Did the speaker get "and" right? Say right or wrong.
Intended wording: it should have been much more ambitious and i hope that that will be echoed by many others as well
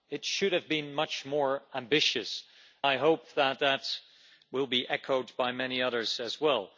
wrong